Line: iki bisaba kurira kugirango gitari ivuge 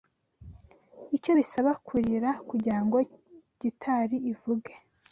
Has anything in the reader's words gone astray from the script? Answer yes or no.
yes